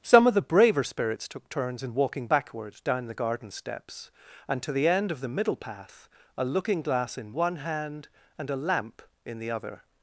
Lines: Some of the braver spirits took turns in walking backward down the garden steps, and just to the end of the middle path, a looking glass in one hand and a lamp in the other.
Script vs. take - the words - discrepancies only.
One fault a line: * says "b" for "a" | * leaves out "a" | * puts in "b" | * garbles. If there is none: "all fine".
* leaves out "just"